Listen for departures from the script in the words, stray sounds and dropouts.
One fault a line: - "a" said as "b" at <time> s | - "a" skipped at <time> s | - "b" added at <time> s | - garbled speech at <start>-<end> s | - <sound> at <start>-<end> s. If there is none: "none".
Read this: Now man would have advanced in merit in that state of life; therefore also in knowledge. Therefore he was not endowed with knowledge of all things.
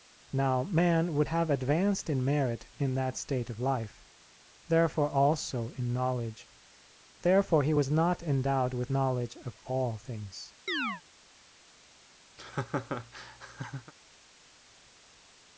- chirp at 10.7-11.0 s
- laugh at 12.4-13.9 s